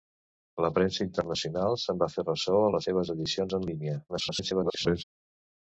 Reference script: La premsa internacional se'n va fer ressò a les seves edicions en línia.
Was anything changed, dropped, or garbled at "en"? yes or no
no